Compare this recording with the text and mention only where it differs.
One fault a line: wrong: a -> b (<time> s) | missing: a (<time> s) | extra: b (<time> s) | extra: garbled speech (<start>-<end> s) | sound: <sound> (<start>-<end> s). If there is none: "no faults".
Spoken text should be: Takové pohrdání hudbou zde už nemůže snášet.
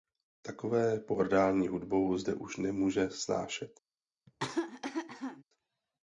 sound: cough (4.3-5.4 s)